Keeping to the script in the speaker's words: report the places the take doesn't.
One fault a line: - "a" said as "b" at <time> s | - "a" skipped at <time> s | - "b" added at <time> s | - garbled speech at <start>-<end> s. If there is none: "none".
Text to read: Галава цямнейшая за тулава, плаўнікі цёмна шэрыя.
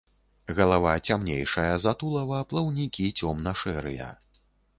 none